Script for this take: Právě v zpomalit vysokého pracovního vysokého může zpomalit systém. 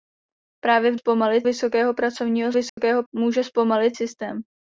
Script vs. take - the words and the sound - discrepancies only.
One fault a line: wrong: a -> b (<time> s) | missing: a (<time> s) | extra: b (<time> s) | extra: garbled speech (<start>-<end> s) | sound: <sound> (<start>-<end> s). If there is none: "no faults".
sound: dropout (2.7-2.8 s)